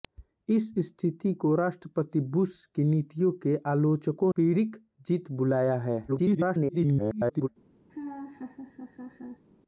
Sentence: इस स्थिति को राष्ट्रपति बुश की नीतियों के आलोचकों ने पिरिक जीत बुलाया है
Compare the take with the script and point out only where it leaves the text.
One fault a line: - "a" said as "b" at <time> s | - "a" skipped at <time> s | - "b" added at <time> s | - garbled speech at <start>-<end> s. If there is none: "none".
- "ने" skipped at 4.3 s
- garbled speech at 6.1-7.5 s